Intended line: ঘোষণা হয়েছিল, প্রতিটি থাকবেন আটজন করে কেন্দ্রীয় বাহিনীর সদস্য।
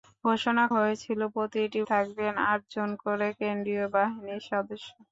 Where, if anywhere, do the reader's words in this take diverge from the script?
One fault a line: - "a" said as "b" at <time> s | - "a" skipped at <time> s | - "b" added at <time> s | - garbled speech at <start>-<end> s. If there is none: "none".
none